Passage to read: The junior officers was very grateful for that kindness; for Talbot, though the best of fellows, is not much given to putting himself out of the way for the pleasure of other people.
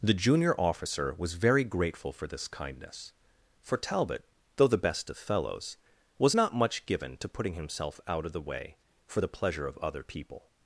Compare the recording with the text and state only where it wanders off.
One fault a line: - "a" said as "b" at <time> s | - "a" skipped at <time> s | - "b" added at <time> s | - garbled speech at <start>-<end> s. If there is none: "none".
- "officers" said as "officer" at 0.6 s
- "that" said as "this" at 2.2 s
- "is" said as "was" at 6.2 s